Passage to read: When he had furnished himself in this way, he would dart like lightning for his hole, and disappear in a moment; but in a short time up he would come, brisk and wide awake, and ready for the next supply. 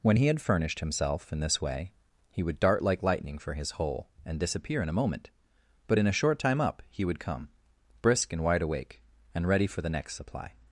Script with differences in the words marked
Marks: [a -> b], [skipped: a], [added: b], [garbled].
When he had furnished himself in this way, he would dart like lightning for his hole, and disappear in a moment; but in a short time up he would come, brisk and wide awake, and ready for the next supply.